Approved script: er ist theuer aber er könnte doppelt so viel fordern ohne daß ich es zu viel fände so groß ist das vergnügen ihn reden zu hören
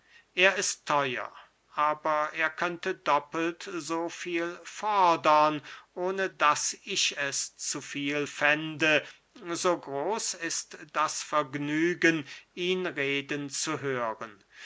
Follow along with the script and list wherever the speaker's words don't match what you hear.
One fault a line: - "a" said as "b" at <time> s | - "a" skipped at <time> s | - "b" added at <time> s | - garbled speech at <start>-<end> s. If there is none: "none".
none